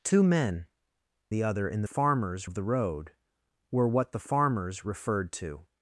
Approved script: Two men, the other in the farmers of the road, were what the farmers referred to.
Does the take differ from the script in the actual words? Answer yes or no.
no